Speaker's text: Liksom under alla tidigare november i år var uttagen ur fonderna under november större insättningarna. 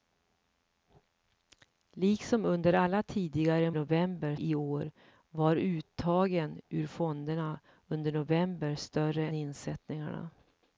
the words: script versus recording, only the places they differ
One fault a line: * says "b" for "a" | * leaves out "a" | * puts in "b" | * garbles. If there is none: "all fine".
all fine